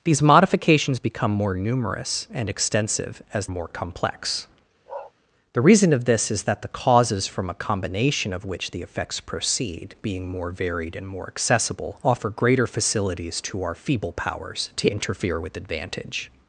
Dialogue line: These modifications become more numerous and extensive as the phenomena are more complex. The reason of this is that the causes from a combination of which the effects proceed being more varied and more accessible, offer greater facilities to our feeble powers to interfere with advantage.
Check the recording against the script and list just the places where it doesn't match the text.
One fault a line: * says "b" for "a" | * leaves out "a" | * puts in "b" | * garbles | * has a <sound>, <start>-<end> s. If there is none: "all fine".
* leaves out "the phenomena are"
* has a bark, 4.9-5.1 s